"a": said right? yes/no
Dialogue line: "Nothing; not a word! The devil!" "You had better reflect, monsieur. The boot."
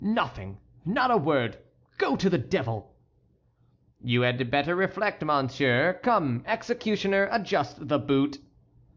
yes